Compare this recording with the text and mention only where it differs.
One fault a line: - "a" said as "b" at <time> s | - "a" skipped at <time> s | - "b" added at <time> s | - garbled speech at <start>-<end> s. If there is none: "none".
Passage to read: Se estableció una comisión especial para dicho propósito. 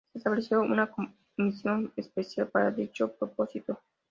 none